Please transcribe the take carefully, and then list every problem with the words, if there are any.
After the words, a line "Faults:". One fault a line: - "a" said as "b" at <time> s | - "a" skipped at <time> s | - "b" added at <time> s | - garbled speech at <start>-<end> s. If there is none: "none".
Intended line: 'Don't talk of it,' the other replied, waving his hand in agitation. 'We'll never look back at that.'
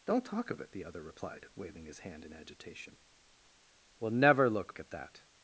'Don't talk of it,' the other replied, waving his hand in agitation. 'We'll never look at that.'
Faults:
- "back" skipped at 4.8 s